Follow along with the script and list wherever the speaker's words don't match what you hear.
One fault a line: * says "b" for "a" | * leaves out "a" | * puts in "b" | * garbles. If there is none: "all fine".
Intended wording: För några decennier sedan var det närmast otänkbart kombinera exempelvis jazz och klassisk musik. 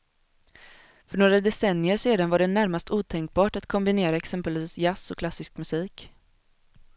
* puts in "att"